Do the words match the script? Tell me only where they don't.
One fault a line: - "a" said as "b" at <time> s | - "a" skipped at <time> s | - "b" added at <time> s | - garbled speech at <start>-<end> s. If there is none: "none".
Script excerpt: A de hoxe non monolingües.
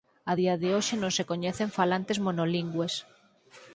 - "día" added at 0.4 s
- "se coñecen falantes" added at 1.2 s